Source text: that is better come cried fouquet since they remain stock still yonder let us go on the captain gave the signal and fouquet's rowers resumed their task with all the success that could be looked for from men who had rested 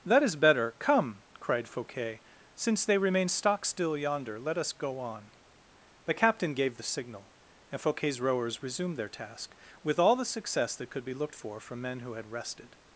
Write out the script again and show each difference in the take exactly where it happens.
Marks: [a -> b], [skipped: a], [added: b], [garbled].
that is better come cried fouquet since they remain stock still yonder let us go on the captain gave the signal and fouquet's rowers resumed their task with all the success that could be looked for from men who had rested